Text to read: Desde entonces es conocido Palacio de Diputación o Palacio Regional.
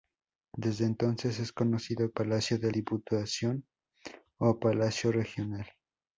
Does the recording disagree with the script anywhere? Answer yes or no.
no